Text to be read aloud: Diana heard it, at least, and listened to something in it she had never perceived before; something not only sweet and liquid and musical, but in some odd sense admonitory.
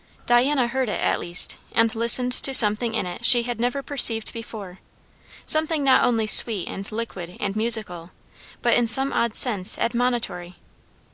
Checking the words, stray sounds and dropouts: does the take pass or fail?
pass